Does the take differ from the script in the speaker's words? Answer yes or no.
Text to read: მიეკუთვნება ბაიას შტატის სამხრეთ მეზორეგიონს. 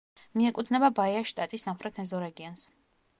no